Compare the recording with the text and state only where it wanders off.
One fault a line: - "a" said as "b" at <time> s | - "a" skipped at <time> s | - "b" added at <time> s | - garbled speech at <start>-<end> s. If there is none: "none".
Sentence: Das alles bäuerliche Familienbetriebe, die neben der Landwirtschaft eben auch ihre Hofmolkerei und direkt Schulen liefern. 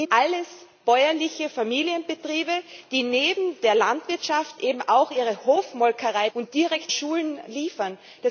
none